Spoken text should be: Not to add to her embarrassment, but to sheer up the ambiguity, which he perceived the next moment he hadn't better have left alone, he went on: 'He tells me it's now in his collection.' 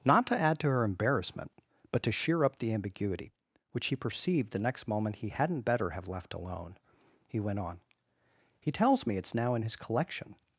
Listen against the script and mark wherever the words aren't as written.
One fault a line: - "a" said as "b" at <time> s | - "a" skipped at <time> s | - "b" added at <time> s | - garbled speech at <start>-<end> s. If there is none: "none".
none